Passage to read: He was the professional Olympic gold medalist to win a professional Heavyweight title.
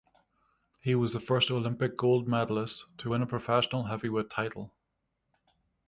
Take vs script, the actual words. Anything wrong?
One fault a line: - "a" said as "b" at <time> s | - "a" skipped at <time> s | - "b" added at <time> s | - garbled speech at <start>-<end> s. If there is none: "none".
- "professional" said as "first" at 1.2 s